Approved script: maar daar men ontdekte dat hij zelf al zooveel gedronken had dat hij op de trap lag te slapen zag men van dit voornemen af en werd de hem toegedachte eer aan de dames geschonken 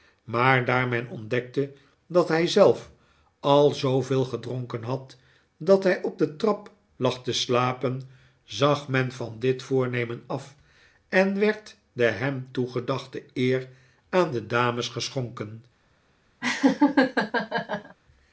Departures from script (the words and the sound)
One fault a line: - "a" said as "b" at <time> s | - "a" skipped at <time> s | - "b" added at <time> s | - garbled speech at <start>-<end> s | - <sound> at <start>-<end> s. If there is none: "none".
- laugh at 16.4-18.0 s